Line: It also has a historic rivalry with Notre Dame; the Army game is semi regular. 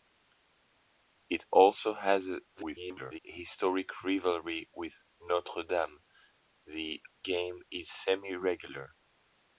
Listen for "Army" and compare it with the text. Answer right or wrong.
wrong